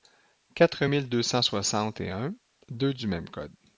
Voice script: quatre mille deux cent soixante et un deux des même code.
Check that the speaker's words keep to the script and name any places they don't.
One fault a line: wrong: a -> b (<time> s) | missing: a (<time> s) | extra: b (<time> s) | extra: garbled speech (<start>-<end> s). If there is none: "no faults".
wrong: des -> du (2.9 s)